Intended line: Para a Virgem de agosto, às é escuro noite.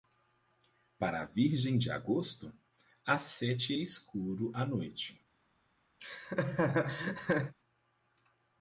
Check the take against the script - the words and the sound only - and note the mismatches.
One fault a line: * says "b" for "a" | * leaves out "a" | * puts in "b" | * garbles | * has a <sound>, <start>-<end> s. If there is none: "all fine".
* puts in "sete"
* puts in "à"
* has a laugh, 6.0-7.5 s